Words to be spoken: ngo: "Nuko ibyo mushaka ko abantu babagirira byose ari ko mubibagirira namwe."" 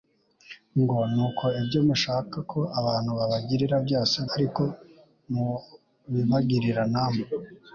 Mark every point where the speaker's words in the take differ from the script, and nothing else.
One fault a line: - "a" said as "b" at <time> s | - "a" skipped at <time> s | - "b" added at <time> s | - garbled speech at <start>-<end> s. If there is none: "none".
none